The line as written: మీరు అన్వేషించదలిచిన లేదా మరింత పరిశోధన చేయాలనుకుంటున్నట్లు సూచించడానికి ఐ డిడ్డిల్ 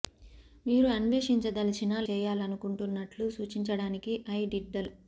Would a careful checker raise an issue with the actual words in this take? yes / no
yes